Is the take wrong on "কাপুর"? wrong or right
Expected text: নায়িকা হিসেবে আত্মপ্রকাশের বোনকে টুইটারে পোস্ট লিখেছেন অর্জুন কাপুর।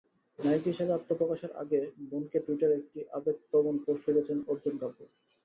right